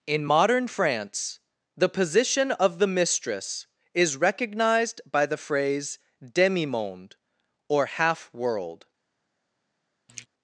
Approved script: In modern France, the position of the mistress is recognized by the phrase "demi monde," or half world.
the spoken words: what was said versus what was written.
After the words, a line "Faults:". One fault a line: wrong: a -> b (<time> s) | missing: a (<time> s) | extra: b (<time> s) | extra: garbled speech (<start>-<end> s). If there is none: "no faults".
In modern France, the position of the mistress is recognized by the phrase "demi monde," or half world.
Faults:
no faults